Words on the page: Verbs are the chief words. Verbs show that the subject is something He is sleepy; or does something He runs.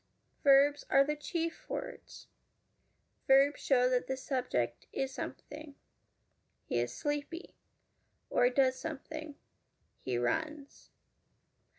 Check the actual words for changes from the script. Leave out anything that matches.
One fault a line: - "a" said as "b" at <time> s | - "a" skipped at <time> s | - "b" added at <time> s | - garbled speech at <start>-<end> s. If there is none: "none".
none